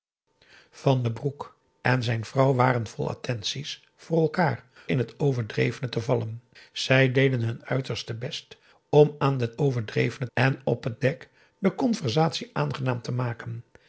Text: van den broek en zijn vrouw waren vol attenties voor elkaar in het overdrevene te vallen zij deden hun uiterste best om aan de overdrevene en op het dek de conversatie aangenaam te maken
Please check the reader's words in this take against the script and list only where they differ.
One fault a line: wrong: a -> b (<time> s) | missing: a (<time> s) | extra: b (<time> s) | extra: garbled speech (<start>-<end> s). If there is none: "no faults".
no faults